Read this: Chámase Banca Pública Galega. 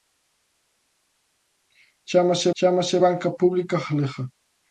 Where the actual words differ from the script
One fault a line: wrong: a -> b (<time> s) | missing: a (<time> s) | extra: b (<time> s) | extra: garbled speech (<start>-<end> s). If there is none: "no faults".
extra: chámase (2.6 s)